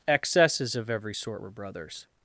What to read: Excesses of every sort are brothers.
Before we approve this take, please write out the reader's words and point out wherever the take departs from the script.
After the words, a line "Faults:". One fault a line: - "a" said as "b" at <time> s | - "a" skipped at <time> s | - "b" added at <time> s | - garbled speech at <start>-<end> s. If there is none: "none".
Excesses of every sort were brothers.
Faults:
- "are" said as "were" at 1.4 s